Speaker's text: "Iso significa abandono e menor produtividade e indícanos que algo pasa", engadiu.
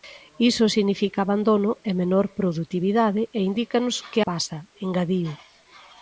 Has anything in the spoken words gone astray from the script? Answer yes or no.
yes